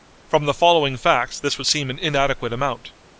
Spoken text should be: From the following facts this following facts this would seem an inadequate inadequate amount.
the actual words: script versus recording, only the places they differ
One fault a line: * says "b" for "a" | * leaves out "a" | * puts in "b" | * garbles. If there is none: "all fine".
* leaves out "following facts this"
* leaves out "inadequate"